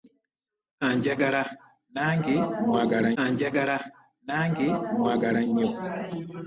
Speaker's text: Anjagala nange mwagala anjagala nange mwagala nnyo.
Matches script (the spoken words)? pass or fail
pass